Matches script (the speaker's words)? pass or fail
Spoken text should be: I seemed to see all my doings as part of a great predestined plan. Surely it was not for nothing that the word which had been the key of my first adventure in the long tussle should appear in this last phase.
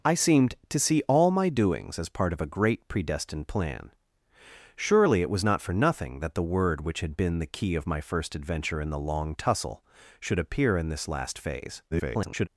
fail